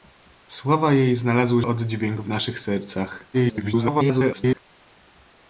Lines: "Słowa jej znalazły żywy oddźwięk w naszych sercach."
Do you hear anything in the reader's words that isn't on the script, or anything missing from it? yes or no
yes